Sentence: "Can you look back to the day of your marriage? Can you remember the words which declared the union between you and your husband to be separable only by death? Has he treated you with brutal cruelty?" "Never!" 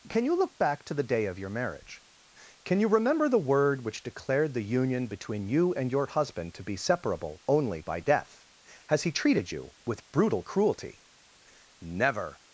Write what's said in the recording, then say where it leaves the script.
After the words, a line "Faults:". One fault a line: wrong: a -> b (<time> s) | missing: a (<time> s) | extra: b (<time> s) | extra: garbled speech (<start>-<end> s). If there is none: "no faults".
"Can you look back to the day of your marriage? Can you remember the word which declared the union between you and your husband to be separable only by death? Has he treated you with brutal cruelty?" "Never!"
Faults:
wrong: words -> word (3.4 s)